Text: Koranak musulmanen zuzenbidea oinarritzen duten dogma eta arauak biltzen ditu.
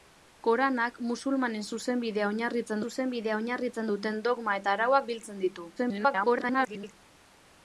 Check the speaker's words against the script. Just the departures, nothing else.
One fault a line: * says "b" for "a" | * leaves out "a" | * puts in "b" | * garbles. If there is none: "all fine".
* puts in "zuzenbidea oinarritzen"
* garbles